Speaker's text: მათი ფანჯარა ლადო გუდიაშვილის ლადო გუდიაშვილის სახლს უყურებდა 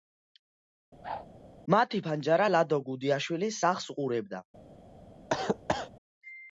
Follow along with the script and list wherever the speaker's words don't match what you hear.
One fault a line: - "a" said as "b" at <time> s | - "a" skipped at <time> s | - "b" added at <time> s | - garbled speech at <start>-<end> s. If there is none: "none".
- "ლადო გუდიაშვილის" skipped at 3.6 s